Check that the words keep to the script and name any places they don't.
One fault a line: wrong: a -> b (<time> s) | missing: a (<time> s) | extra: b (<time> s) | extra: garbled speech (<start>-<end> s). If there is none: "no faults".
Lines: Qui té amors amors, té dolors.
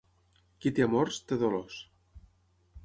missing: amors (1.2 s)